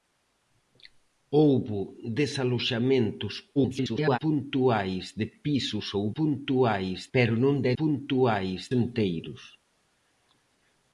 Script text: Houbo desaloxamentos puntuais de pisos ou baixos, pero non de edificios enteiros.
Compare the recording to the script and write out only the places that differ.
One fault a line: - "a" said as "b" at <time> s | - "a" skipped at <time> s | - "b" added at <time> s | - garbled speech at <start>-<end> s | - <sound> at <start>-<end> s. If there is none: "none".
- garbled speech at 3.6-4.2 s
- "baixos" said as "puntuais" at 6.2 s
- "edificios" said as "puntuais" at 7.8 s